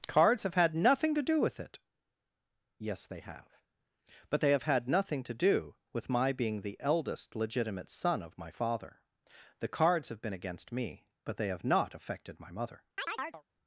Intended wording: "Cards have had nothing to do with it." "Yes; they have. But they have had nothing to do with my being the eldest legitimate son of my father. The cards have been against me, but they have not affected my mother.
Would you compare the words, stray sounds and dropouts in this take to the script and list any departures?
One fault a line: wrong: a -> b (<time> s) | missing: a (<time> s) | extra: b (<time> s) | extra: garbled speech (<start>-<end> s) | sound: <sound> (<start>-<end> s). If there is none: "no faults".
sound: chirp (13.0-13.4 s)